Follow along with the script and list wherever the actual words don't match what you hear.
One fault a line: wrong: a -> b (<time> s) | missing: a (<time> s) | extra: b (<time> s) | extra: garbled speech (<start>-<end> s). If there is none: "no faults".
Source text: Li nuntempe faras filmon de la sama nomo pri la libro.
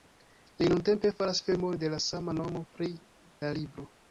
no faults